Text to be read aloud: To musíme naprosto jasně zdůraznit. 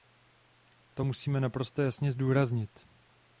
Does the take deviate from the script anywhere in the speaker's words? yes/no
no